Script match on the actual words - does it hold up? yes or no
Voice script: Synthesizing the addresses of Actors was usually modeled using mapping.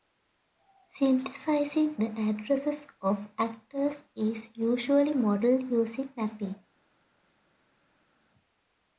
no